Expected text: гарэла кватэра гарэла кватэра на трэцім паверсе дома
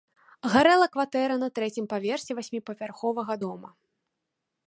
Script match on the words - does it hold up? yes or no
no